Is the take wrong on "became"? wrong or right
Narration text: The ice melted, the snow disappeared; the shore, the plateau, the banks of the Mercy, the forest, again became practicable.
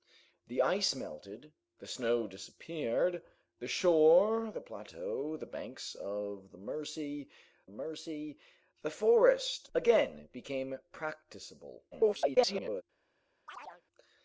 right